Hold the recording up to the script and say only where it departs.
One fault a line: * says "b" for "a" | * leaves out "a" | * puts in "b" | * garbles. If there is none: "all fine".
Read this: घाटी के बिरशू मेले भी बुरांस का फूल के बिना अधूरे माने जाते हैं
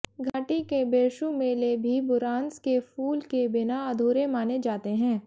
* says "के" for "का"